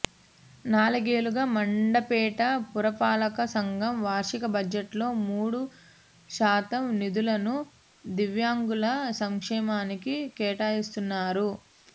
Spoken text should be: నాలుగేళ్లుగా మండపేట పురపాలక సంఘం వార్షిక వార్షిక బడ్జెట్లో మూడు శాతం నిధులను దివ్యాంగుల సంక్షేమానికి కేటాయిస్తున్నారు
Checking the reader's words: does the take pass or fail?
fail